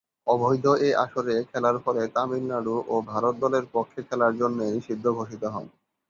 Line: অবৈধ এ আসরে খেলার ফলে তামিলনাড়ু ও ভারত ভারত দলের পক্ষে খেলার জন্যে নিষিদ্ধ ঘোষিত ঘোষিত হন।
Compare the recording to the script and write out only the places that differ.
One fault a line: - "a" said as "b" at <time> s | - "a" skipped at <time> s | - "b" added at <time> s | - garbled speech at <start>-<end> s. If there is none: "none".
- "ভারত" skipped at 3.3 s
- "ঘোষিত" skipped at 5.4 s